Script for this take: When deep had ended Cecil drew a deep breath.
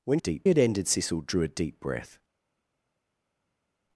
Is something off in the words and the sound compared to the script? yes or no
no